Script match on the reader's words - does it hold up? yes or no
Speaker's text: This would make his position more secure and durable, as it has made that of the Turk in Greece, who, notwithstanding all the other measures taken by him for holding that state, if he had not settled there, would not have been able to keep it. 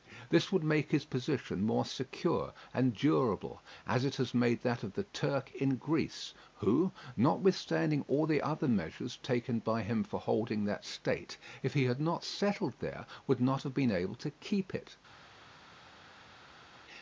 yes